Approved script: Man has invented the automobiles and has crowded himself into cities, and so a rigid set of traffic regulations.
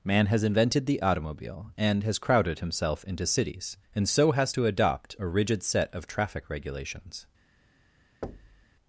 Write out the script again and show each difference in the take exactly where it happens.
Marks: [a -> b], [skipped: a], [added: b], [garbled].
Man has invented the [automobiles -> automobile] and has crowded himself into cities, and so [added: has to adopt] a rigid set of traffic regulations.